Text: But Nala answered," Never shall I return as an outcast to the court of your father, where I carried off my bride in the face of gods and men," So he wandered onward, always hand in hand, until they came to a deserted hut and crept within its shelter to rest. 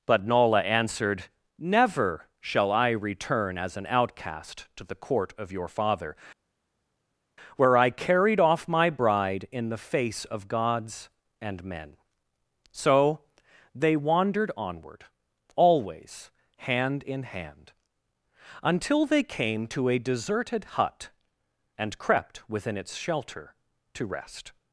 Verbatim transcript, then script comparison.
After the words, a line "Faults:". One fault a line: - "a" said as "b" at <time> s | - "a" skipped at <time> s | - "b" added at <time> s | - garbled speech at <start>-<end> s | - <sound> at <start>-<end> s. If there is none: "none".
But Nala answered," Never shall I return as an outcast to the court of your father, where I carried off my bride in the face of gods and men," So they wandered onward, always hand in hand, until they came to a deserted hut and crept within its shelter to rest.
Faults:
- "he" said as "they" at 13.7 s